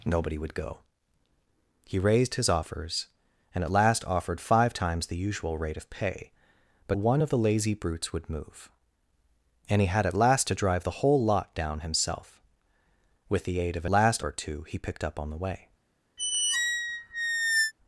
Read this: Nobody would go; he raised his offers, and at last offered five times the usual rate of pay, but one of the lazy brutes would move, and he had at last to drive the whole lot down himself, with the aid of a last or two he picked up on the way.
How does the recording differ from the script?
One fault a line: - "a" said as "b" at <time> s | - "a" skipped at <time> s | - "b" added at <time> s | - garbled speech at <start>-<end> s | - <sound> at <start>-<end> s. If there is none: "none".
- squeak at 16.2-17.7 s